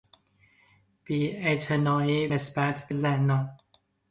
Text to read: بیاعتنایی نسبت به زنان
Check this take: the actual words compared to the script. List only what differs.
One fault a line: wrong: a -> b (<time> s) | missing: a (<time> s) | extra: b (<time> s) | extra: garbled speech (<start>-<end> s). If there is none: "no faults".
no faults